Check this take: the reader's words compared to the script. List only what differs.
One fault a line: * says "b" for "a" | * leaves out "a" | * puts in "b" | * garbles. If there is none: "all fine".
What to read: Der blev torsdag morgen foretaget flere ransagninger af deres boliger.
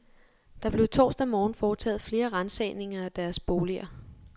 all fine